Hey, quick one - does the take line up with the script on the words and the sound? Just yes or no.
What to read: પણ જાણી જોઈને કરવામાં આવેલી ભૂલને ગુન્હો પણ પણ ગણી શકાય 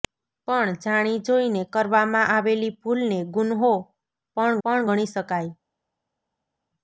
yes